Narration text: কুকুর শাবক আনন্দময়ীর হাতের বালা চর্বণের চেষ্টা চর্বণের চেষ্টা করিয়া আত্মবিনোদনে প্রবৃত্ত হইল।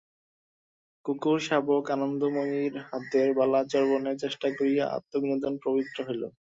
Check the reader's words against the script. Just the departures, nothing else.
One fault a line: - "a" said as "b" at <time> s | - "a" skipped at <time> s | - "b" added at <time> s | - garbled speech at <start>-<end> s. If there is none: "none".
- "চর্বণের চেষ্টা" skipped at 4.5 s